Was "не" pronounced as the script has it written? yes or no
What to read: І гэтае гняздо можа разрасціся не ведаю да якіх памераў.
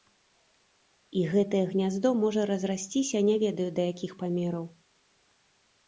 yes